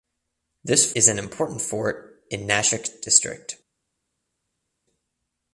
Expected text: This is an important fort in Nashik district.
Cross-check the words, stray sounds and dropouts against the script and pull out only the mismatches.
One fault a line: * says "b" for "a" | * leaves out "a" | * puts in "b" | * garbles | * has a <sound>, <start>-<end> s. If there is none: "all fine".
all fine